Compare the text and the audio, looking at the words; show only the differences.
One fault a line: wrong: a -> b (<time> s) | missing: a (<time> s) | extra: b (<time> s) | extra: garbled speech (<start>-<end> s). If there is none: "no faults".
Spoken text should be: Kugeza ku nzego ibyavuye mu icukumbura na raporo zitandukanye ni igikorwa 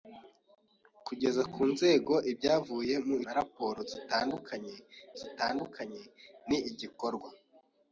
missing: icukumbura (3.1 s)
extra: zitandukanye (5.2 s)